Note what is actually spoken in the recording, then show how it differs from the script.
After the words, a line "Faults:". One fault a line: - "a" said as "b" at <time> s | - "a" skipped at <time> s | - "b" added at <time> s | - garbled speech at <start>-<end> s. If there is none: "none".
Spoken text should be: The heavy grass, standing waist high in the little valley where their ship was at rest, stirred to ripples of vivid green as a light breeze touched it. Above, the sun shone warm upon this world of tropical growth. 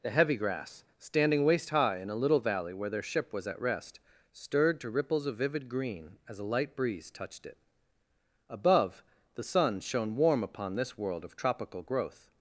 The heavy grass, standing waist high in a little valley where their ship was at rest, stirred to ripples of vivid green as a light breeze touched it. Above, the sun shone warm upon this world of tropical growth.
Faults:
- "the" said as "a" at 2.1 s